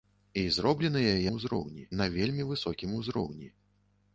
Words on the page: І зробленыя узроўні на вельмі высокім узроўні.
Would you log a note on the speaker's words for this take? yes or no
no